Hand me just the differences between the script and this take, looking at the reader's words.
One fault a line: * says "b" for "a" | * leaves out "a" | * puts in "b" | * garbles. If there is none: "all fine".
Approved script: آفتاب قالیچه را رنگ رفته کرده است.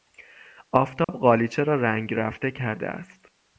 all fine